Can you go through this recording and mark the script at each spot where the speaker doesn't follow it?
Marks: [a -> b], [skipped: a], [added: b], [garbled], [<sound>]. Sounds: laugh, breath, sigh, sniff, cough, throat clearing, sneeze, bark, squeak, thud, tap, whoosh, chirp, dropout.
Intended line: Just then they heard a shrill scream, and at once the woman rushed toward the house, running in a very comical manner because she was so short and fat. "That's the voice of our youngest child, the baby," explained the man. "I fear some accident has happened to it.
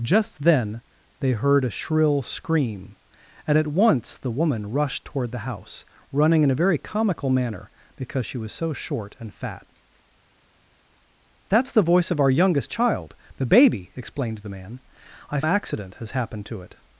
Just then they heard a shrill scream, and at once the woman rushed toward the house, running in a very comical manner because she was so short and fat. "That's the voice of our youngest child, the baby," explained the man. "I [skipped: fear some] accident has happened to it.